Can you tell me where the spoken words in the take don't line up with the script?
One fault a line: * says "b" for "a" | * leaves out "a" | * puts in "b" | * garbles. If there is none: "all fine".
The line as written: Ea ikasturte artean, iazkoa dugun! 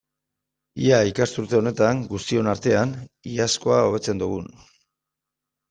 * puts in "honetan guztion"
* puts in "hobetzen"